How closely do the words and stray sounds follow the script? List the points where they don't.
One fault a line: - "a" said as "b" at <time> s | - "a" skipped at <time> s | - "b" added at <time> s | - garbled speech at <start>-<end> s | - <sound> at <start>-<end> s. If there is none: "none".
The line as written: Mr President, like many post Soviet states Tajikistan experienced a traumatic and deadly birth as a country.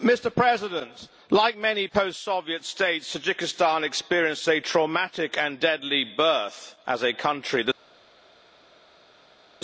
none